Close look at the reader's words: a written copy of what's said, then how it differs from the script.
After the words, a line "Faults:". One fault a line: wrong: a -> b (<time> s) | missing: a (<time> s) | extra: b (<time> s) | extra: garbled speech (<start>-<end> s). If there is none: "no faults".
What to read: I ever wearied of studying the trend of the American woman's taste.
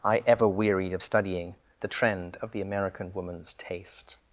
I ever wearied of studying the trend of the American woman's taste.
Faults:
no faults